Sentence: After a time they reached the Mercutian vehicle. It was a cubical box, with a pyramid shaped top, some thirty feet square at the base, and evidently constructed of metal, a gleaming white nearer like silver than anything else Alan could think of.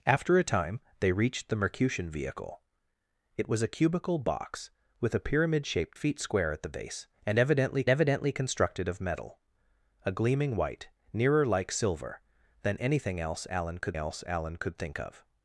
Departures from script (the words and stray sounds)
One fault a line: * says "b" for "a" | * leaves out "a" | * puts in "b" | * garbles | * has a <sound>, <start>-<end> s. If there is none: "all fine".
* leaves out "top some thirty"
* puts in "evidently"
* puts in "else Alan could"